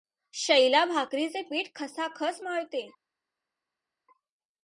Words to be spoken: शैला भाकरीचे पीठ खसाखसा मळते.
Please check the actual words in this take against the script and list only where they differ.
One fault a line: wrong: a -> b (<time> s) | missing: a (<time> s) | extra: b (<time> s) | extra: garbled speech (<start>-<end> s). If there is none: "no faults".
no faults